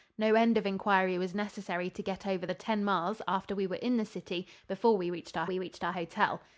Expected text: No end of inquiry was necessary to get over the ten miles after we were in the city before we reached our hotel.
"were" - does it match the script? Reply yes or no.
yes